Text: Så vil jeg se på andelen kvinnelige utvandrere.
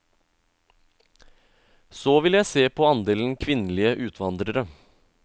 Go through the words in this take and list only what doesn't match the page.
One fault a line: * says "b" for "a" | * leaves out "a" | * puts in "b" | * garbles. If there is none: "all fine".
all fine